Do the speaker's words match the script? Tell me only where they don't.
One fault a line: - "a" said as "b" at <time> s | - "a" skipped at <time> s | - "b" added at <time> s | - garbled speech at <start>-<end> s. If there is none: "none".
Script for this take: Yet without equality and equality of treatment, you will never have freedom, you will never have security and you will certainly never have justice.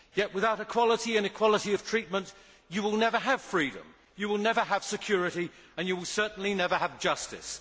none